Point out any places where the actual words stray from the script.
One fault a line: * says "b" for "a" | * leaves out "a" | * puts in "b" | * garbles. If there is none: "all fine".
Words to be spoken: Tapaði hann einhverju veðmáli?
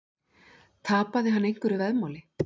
all fine